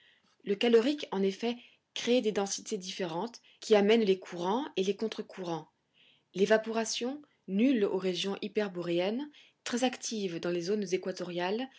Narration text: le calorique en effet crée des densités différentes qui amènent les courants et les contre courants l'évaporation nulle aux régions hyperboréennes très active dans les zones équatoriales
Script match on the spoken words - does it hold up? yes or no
yes